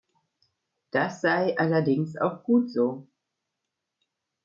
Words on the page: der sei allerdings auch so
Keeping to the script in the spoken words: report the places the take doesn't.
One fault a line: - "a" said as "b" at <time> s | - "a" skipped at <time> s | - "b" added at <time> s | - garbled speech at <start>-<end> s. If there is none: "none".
- "der" said as "das" at 0.9 s
- "gut" added at 2.4 s